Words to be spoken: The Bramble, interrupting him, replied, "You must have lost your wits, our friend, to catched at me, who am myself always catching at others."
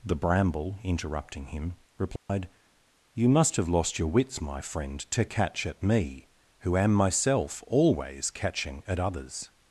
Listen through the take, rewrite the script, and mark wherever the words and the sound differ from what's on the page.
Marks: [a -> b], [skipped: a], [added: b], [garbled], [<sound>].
The Bramble, interrupting him, replied, [dropout] "You must have lost your wits, [our -> my] friend, to [catched -> catch] at me, who am myself always catching at others."